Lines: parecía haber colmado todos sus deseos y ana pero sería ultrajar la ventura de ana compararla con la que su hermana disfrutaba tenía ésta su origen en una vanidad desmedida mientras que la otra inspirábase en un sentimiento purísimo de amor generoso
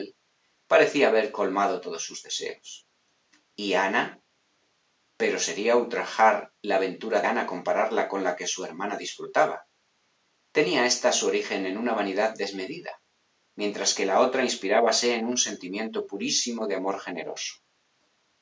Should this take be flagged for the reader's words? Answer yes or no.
yes